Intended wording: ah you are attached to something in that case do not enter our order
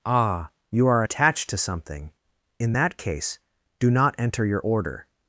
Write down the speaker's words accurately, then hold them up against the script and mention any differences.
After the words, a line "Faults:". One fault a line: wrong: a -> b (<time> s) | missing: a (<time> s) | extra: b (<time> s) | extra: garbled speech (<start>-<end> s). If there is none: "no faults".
ah you are attached to something in that case do not enter your order
Faults:
wrong: our -> your (4.4 s)